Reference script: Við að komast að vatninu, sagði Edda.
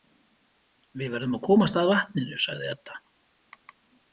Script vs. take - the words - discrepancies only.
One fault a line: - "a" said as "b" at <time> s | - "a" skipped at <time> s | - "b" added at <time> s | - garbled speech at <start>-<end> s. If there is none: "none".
- "verðum" added at 1.1 s